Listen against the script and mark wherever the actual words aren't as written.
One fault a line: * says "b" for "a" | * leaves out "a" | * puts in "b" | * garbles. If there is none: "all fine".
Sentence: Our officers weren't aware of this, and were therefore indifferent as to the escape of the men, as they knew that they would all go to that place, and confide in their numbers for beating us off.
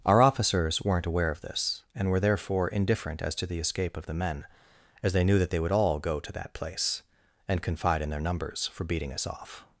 all fine